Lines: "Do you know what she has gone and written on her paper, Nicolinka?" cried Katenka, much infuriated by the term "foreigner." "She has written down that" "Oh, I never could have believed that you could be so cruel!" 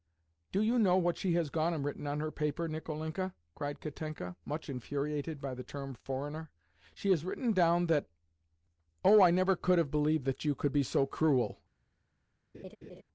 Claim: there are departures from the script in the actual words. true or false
false